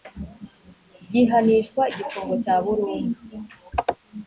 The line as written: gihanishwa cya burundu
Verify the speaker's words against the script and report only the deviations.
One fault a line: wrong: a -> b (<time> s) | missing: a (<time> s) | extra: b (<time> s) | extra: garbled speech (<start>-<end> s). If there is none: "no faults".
extra: igifungo (1.9 s)